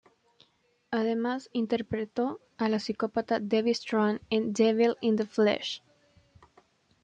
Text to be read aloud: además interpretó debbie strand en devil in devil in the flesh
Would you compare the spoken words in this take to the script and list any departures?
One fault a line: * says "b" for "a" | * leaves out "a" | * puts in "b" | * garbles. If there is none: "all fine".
* puts in "a la psicópata"
* leaves out "devil in"